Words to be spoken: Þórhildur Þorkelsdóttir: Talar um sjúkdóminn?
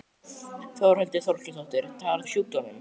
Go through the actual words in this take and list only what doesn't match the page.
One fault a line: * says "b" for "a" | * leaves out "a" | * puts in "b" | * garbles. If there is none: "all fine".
all fine